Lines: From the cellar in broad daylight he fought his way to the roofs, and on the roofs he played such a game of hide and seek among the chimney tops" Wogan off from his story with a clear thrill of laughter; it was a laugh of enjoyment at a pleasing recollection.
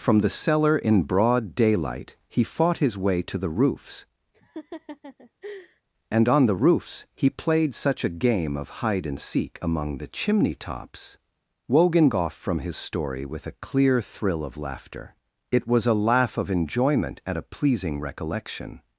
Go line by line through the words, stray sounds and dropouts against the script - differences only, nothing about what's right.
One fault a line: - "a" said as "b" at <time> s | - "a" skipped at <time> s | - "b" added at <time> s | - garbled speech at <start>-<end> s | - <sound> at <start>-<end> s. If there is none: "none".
- laugh at 4.3-5.8 s